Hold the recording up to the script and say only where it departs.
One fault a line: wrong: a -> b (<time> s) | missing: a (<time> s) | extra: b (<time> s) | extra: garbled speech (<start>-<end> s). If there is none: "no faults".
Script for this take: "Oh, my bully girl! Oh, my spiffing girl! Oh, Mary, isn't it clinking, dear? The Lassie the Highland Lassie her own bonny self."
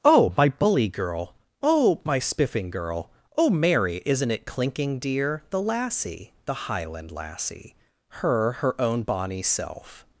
extra: her (8.5 s)